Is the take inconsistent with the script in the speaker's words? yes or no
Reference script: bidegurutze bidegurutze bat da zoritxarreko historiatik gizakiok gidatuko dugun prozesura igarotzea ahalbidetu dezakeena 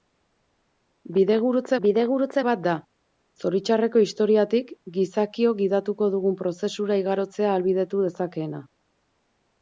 no